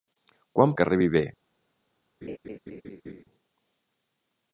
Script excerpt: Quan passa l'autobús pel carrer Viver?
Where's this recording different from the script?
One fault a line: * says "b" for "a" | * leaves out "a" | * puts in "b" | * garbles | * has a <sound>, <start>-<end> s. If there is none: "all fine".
* leaves out "passa l'autobús pel"
* has a laugh, 2.2-3.2 s